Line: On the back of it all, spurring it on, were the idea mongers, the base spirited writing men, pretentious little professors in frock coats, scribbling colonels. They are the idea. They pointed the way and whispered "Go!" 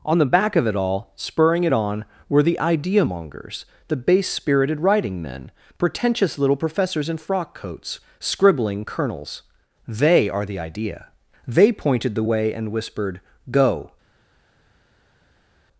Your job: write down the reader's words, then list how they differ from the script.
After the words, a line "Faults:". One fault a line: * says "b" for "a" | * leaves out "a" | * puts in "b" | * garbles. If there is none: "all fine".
On the back of it all, spurring it on, were the idea mongers, the base spirited writing men, pretentious little professors in frock coats, scribbling colonels. They are the idea. They pointed the way and whispered "Go!"
Faults:
all fine